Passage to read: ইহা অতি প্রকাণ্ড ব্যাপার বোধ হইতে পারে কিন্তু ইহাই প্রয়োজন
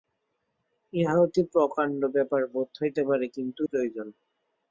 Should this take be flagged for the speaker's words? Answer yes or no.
yes